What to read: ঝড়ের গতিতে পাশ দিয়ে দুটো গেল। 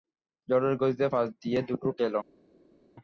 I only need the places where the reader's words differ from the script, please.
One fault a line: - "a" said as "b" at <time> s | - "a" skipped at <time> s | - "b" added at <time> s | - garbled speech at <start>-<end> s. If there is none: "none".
none